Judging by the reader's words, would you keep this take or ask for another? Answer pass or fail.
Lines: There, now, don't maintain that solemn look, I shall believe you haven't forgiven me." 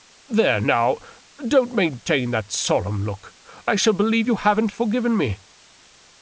pass